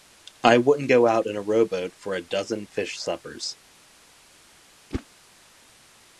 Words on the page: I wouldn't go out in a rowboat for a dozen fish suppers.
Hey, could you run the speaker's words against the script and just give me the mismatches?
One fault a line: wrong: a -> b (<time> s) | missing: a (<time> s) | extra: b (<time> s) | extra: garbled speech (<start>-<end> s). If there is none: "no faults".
no faults